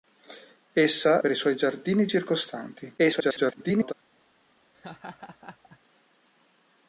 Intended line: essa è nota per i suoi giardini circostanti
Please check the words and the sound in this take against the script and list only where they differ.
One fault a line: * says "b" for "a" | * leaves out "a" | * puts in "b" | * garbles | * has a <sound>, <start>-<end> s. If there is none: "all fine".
* leaves out "è nota"
* garbles
* has a laugh, 4.7-5.8 s